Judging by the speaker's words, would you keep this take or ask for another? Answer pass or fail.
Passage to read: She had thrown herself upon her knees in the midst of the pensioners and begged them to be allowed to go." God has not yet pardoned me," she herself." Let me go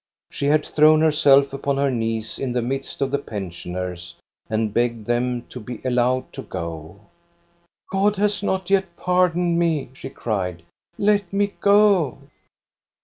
fail